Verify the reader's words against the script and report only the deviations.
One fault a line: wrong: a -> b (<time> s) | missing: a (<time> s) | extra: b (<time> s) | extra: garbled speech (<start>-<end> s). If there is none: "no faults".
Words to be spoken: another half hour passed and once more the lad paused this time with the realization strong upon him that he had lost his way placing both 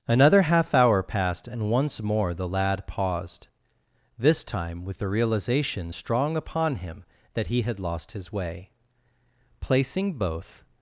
no faults